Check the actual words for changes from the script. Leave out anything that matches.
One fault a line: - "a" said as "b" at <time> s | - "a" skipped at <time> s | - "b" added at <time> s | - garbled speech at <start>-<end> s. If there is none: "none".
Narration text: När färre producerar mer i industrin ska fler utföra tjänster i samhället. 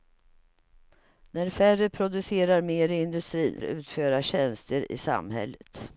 - "ska fler" skipped at 3.6 s